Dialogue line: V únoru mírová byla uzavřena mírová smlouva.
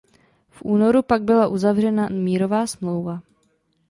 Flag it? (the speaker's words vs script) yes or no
yes